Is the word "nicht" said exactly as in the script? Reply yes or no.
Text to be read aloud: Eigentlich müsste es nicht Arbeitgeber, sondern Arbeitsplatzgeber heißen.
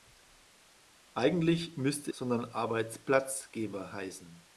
no